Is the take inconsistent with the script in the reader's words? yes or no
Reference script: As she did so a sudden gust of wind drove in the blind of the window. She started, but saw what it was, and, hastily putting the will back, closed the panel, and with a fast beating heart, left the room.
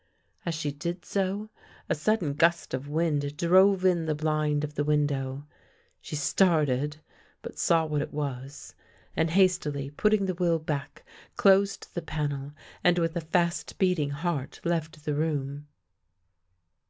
no